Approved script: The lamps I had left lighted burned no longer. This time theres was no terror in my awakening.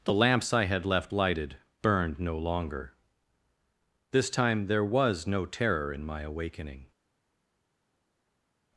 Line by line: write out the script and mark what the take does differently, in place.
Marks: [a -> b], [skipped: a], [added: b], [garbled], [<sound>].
The lamps I had left lighted burned no longer. This time [theres -> there] was no terror in my awakening.